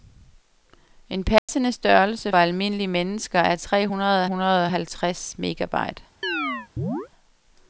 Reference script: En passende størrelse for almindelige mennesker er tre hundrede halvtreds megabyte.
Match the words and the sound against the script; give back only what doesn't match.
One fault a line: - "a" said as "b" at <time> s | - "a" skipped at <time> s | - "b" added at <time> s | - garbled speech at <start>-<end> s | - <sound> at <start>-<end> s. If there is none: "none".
- dropout at 1.4-1.5 s
- "for" skipped at 2.3 s
- "hundrede" added at 4.2 s
- chirp at 6.2-7.1 s